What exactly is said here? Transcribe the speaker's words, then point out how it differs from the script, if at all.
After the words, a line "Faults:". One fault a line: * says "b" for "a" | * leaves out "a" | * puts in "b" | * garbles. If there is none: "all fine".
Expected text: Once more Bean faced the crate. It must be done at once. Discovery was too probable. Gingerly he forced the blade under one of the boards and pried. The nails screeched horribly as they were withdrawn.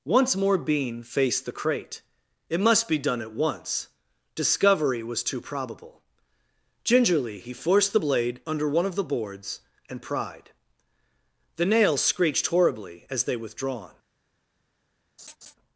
Once more Bean faced the crate. It must be done at once. Discovery was too probable. Gingerly he forced the blade under one of the boards and pried. The nails screeched horribly as they withdrawn.
Faults:
* leaves out "were"